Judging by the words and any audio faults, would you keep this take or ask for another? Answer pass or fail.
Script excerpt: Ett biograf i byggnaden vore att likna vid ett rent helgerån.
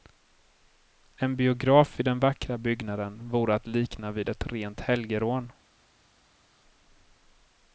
fail